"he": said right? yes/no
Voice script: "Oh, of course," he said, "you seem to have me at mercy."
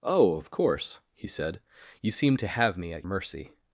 yes